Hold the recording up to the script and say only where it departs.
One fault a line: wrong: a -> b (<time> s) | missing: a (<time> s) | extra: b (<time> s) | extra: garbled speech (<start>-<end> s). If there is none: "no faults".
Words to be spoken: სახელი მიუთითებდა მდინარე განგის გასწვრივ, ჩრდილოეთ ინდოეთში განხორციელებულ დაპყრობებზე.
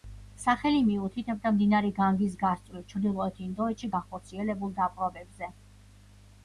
no faults